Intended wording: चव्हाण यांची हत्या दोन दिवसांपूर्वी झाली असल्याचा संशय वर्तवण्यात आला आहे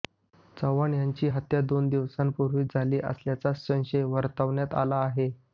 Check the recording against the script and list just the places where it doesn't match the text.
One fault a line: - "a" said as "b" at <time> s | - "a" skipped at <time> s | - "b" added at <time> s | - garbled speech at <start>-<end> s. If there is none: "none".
none